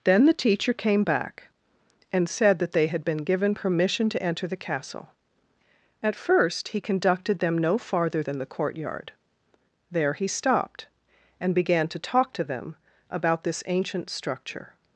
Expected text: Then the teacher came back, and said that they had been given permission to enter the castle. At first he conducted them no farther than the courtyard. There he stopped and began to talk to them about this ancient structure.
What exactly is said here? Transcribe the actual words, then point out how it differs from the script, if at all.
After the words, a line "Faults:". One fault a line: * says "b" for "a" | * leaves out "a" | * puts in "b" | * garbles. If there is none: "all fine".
Then the teacher came back, and said that they had been given permission to enter the castle. At first he conducted them no farther than the courtyard. There he stopped and began to talk to them about this ancient structure.
Faults:
all fine